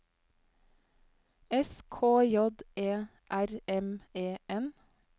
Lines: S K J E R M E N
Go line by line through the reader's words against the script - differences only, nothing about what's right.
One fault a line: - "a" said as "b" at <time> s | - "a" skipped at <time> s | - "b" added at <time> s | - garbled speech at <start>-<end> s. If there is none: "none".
none